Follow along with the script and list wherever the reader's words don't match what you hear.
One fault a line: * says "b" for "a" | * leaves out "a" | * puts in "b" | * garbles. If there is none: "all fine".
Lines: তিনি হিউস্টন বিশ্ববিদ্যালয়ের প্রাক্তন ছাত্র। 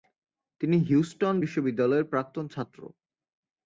all fine